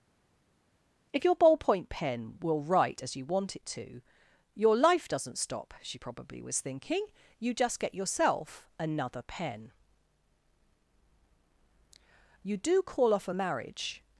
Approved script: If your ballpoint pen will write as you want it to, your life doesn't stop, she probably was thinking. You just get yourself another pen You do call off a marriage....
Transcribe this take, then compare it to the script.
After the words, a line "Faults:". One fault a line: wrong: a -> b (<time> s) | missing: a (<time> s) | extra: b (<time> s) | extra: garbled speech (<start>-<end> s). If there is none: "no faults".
If your ballpoint pen will write as you want it to, your life doesn't stop, she probably was thinking. You just get yourself another pen You do call off a marriage....
Faults:
no faults